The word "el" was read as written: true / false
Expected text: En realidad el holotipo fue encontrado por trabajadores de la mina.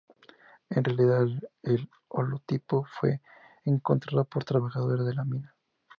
true